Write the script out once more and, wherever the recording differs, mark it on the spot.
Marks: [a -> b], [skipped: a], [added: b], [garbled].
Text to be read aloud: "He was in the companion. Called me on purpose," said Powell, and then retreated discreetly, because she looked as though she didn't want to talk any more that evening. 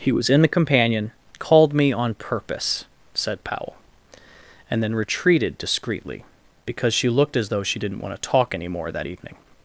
"He was in the companion. Called me on purpose," said Powell, and then retreated discreetly, because she looked as though she didn't want to talk any more that evening.